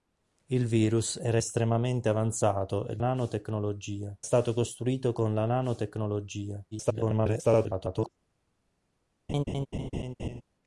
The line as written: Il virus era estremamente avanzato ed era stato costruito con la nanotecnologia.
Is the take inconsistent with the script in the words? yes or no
yes